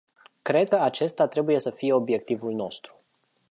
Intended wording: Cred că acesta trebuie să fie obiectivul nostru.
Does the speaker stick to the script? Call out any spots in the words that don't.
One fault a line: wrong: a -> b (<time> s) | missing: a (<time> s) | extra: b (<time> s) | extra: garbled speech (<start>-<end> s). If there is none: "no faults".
no faults